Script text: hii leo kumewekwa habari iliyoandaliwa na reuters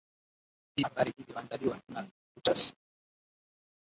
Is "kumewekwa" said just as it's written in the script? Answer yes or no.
no